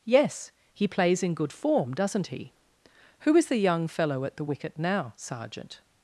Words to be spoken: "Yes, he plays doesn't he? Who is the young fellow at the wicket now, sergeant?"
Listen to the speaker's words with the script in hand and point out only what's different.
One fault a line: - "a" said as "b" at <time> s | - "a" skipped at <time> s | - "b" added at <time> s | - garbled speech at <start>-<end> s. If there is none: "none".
- "in good form" added at 1.2 s